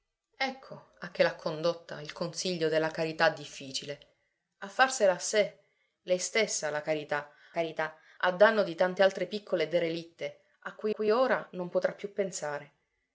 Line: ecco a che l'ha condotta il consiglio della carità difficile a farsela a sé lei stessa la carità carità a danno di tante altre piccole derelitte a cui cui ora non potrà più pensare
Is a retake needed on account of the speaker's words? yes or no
no